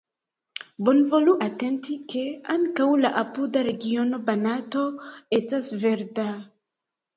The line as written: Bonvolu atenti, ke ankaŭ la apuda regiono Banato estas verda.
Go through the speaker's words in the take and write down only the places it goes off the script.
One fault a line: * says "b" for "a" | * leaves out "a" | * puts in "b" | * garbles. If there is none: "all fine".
all fine